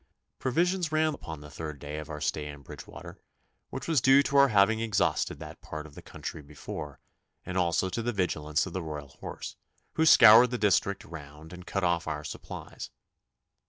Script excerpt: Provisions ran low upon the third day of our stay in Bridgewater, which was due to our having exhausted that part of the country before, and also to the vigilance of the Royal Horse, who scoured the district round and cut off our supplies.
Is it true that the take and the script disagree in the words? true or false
true